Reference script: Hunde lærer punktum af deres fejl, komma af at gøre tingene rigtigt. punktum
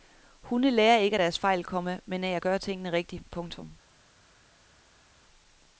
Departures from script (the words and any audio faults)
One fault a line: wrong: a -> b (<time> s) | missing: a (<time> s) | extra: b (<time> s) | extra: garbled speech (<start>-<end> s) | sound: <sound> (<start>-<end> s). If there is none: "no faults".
wrong: punktum -> ikke (1.0 s)
extra: men (2.1 s)